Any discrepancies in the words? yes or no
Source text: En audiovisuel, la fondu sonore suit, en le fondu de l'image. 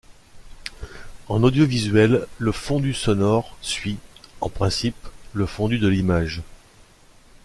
yes